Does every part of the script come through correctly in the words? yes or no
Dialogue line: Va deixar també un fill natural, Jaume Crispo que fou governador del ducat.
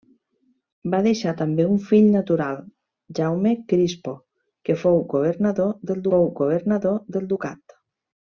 no